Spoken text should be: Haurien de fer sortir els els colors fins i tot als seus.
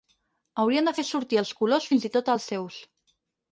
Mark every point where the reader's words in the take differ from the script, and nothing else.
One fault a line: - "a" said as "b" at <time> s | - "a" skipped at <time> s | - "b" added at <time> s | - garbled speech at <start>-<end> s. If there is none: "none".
- "els" skipped at 1.5 s